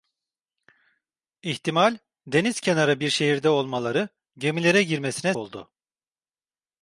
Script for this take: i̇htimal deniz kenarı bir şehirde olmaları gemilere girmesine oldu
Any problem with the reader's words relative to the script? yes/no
no